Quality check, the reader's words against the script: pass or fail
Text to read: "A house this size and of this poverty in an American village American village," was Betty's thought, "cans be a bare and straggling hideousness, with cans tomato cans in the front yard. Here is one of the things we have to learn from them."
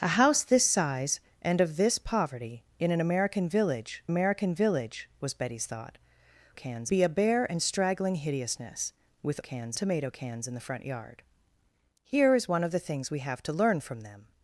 pass